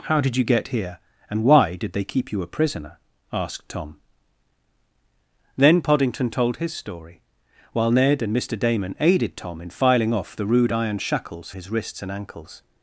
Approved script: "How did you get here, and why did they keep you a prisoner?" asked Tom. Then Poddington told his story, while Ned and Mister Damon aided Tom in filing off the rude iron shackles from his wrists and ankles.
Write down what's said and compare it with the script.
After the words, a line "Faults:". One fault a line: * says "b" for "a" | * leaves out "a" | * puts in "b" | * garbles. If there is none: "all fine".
"How did you get here, and why did they keep you a prisoner?" asked Tom. Then Poddington told his story, while Ned and Mister Damon aided Tom in filing off the rude iron shackles his wrists and ankles.
Faults:
* leaves out "from"